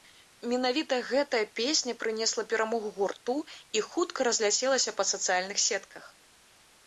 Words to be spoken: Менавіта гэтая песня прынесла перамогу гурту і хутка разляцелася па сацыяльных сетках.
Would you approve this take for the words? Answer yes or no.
yes